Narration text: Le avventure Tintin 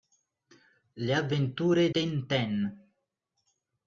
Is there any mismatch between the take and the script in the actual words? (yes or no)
no